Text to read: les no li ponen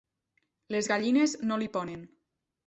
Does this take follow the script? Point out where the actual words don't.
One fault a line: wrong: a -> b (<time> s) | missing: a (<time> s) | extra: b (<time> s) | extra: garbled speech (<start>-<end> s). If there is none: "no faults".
extra: gallines (0.9 s)